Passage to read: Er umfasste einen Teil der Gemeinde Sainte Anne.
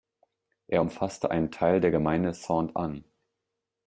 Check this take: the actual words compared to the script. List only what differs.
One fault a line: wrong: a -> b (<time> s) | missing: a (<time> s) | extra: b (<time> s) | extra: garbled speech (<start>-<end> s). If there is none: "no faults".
no faults